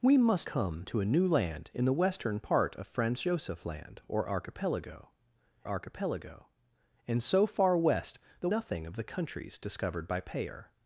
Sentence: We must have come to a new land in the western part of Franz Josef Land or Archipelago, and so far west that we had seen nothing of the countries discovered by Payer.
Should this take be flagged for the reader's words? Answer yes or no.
yes